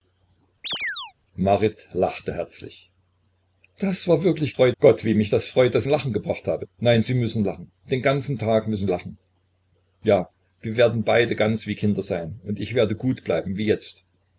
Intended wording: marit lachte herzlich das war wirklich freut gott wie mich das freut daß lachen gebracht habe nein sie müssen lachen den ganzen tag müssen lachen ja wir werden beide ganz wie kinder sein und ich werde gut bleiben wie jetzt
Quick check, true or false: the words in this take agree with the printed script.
true